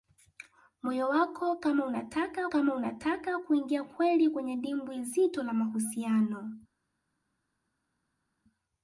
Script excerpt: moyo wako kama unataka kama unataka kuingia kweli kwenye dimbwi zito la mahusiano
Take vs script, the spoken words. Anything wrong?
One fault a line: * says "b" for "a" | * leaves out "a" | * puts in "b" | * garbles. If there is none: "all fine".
all fine